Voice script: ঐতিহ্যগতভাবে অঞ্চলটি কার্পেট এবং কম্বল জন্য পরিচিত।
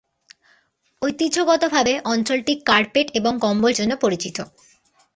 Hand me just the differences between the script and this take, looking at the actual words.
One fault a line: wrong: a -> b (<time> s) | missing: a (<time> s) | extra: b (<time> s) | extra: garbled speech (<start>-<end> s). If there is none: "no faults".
no faults